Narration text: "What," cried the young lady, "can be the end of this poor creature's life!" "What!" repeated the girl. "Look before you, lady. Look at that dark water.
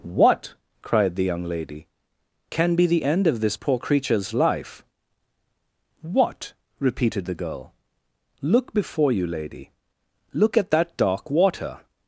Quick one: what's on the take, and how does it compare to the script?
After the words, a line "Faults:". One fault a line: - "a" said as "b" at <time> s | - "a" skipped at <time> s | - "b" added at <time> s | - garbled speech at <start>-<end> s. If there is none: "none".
"What," cried the young lady, "can be the end of this poor creature's life!" "What!" repeated the girl. "Look before you, lady. Look at that dark water.
Faults:
none